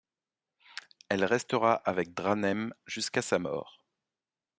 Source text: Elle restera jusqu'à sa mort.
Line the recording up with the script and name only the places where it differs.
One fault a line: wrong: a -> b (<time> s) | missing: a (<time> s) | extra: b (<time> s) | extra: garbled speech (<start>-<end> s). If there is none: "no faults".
extra: avec Dranem (1.8 s)